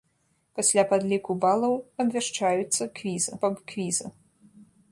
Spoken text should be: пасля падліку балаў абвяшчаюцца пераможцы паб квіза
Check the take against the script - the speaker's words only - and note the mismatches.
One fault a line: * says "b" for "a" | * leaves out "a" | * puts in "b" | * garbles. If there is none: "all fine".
* says "квіза" for "пераможцы"